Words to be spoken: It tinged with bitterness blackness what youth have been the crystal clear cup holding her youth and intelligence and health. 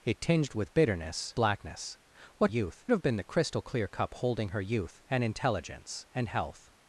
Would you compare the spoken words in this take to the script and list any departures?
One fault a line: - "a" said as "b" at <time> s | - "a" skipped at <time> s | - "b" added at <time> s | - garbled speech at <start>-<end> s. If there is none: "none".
none